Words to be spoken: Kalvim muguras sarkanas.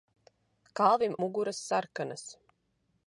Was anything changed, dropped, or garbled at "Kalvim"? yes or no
no